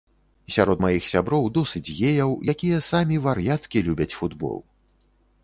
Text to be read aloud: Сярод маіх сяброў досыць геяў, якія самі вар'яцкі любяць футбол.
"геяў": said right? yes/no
yes